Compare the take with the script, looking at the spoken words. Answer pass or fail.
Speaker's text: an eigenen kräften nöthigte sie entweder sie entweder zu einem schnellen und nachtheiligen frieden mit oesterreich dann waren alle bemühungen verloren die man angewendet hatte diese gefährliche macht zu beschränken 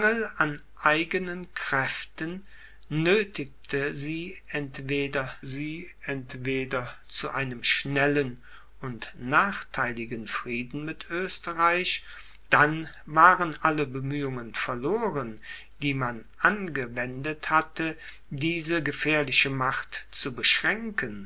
pass